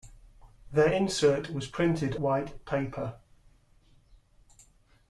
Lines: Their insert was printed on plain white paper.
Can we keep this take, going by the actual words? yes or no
no